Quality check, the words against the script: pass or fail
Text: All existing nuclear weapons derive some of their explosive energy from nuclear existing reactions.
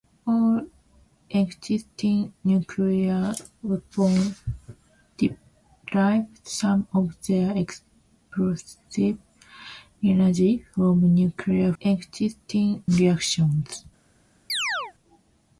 pass